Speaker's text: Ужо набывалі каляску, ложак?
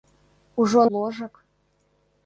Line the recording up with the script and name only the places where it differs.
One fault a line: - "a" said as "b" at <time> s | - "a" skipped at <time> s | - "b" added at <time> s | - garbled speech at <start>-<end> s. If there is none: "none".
- "набывалі каляску" skipped at 0.8 s